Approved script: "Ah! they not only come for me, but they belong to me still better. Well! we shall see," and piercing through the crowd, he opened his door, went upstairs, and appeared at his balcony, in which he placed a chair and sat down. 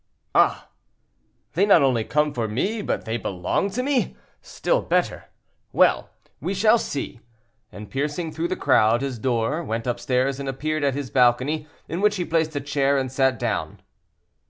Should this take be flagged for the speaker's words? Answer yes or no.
yes